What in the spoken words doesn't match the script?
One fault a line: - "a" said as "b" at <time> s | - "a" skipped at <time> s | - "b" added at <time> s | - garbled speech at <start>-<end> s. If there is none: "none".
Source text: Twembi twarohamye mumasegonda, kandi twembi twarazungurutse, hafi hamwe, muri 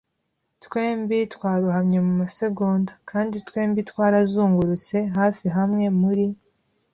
none